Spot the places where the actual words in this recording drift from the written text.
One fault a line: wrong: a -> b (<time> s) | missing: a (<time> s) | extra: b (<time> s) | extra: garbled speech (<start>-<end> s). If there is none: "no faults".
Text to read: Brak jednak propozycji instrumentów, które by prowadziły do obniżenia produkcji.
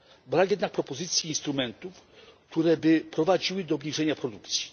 no faults